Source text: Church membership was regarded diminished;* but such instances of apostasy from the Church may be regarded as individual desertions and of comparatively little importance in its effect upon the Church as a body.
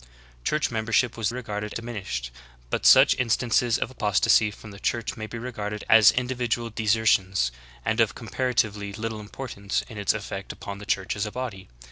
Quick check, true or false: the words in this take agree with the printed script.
true